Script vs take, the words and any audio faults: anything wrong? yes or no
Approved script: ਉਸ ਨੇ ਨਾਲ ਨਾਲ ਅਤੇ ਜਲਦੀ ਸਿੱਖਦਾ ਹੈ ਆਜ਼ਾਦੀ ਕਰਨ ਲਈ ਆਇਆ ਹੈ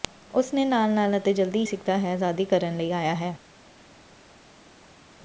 no